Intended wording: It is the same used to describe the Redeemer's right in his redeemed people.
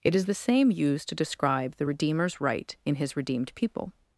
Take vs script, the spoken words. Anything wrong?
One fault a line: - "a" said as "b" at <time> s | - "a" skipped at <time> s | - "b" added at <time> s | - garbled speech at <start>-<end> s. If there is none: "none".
none